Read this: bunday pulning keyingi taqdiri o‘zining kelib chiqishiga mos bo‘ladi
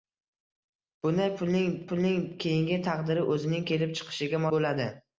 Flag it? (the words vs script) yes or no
yes